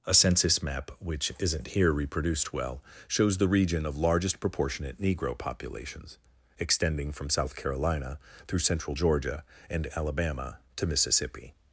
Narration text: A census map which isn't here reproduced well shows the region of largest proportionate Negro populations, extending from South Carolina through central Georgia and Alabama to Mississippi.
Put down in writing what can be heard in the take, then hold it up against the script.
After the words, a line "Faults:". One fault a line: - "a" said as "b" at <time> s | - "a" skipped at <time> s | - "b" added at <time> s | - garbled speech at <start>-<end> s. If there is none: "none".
A census map which isn't here reproduced well shows the region of largest proportionate Negro populations, extending from South Carolina through central Georgia and Alabama to Mississippi.
Faults:
none